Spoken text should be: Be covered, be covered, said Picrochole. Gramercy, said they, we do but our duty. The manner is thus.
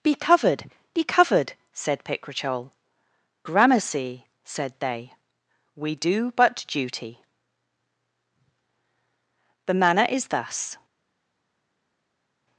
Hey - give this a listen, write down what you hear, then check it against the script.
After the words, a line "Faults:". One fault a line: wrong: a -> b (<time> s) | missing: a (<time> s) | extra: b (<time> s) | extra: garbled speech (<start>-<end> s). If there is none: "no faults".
Be covered, be covered, said Picrochole. Gramercy, said they, we do but duty. The manner is thus.
Faults:
missing: our (6.6 s)